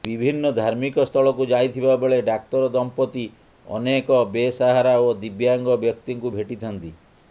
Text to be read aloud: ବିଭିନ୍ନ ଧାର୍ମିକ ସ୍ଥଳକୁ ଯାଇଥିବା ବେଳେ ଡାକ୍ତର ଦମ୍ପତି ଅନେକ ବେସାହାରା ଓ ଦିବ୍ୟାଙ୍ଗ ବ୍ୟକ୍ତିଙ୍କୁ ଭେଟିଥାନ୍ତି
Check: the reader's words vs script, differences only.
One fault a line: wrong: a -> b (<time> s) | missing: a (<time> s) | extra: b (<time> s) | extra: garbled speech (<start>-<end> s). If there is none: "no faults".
no faults